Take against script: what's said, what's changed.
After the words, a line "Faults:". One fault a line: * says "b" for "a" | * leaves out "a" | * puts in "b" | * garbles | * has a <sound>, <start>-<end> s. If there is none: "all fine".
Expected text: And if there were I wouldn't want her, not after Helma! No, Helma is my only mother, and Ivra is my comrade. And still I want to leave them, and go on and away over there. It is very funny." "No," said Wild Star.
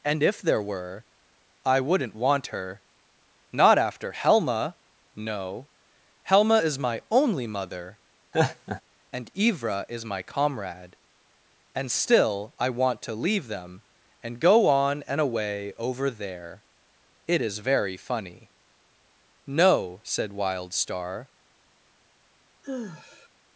And if there were I wouldn't want her, not after Helma! No, Helma is my only mother, and Ivra is my comrade. And still I want to leave them, and go on and away over there. It is very funny." "No," said Wild Star.
Faults:
* has a laugh, 8.3-8.8 s
* has a sigh, 22.6-23.3 s